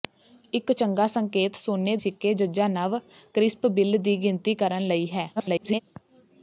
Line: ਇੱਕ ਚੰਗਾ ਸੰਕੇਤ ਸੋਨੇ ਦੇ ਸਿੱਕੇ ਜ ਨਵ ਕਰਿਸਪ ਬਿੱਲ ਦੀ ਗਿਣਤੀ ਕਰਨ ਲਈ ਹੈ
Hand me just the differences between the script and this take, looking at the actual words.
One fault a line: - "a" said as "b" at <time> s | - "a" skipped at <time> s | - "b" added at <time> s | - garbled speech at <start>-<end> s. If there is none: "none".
- "ਦੇ" skipped at 1.9 s
- garbled speech at 5.4-5.8 s